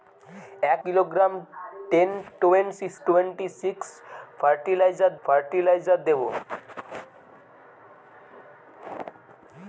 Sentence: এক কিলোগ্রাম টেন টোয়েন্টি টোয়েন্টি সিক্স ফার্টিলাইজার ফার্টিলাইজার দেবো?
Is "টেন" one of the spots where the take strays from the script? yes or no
no